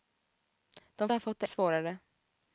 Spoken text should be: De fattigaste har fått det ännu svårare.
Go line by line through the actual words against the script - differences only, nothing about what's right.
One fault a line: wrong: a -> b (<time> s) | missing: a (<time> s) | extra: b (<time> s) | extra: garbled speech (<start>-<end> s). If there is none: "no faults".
missing: fattigaste (1.1 s)
missing: ännu (1.5 s)